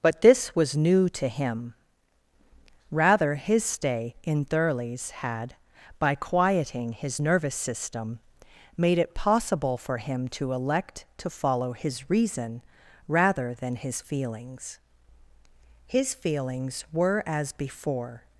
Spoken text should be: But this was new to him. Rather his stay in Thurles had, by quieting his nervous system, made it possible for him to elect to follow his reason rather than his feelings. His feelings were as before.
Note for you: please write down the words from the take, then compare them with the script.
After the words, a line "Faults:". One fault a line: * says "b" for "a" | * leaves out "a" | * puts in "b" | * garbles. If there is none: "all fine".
But this was new to him. Rather his stay in Thurles had, by quieting his nervous system, made it possible for him to elect to follow his reason rather than his feelings. His feelings were as before.
Faults:
all fine